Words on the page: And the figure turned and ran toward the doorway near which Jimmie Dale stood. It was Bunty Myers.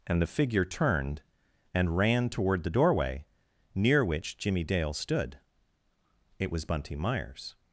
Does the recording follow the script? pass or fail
pass